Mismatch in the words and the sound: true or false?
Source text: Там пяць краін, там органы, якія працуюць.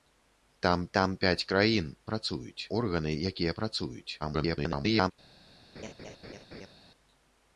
true